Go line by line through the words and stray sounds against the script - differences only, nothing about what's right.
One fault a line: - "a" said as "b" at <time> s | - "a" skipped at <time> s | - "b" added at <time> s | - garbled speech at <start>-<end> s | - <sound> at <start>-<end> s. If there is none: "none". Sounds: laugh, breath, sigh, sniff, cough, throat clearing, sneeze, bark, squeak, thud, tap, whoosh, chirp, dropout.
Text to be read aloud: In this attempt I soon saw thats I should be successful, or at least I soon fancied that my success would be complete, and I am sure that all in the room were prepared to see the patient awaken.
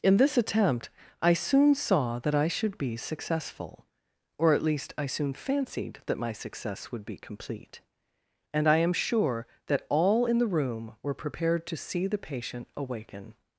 - "thats" said as "that" at 2.2 s